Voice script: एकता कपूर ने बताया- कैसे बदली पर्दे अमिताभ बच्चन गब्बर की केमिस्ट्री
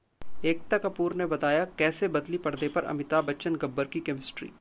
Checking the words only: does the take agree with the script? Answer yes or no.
no